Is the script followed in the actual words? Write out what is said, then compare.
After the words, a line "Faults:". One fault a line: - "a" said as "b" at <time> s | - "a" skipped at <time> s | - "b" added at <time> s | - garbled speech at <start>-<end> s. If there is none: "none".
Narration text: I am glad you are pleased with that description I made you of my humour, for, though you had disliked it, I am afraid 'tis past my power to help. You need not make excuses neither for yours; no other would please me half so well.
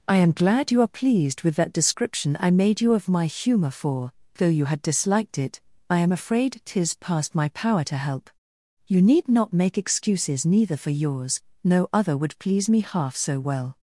I am glad you are pleased with that description I made you of my humour, for, though you had disliked it, I am afraid 'tis past my power to help. You need not make excuses neither for yours; no other would please me half so well.
Faults:
none